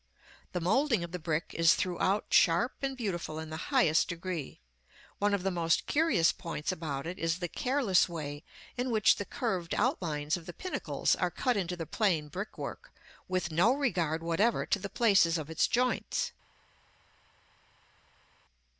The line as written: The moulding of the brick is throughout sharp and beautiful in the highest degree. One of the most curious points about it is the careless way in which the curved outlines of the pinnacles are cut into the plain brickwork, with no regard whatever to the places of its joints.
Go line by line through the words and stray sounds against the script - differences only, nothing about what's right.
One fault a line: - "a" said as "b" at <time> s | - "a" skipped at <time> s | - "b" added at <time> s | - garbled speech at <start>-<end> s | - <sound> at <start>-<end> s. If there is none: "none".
none